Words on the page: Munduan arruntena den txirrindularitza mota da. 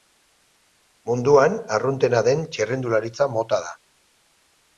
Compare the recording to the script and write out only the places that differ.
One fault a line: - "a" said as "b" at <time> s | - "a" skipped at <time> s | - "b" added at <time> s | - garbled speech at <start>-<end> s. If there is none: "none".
none